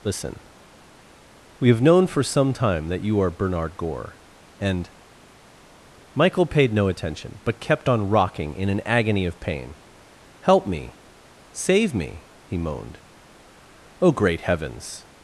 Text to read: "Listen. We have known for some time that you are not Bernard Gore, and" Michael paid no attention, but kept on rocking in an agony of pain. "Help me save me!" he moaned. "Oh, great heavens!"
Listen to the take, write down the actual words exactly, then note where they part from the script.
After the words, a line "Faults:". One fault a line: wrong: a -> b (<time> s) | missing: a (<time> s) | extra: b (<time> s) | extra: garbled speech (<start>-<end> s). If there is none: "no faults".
"Listen. We have known for some time that you are Bernard Gore, and" Michael paid no attention, but kept on rocking in an agony of pain. "Help me save me!" he moaned. "Oh, great heavens!"
Faults:
missing: not (3.3 s)